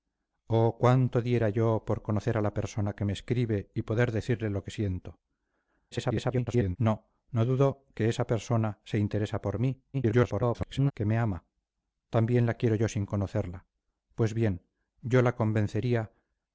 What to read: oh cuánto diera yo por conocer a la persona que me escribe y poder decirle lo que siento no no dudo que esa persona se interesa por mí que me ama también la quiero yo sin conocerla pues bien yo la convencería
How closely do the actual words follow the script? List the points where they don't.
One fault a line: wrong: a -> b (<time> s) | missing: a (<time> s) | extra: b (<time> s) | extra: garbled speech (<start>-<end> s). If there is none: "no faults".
extra: garbled speech (5.9-6.8 s)
extra: garbled speech (9.9-10.9 s)